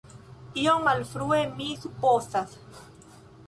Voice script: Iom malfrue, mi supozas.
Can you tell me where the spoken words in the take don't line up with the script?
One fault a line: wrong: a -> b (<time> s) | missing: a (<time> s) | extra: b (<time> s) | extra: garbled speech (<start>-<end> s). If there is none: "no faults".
no faults